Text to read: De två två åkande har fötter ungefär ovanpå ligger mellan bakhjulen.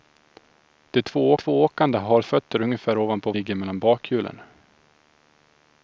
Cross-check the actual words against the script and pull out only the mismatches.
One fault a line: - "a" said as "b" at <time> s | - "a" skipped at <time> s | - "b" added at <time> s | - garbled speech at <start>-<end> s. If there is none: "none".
none